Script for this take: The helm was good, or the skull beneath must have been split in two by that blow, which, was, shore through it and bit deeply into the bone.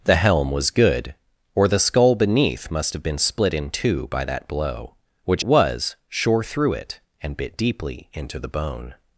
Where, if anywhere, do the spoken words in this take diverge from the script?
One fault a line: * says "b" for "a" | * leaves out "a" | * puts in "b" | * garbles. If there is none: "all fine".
all fine